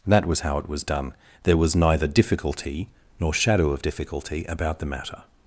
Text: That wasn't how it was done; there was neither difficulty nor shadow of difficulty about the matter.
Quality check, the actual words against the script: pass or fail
fail